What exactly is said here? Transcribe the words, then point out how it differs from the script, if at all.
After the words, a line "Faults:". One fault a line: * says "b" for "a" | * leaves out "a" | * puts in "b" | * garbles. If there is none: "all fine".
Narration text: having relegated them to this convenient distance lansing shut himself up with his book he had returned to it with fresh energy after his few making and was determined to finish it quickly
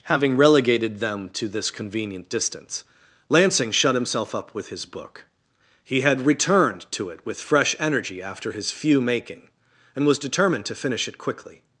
having relegated them to this convenient distance lansing shut himself up with his book he had returned to it with fresh energy after his few making and was determined to finish it quickly
Faults:
all fine